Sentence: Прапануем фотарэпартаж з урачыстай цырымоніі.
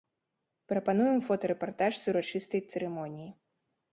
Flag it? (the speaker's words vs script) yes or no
no